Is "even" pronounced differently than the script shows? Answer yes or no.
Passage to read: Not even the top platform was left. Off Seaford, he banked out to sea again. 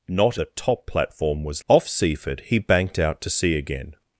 yes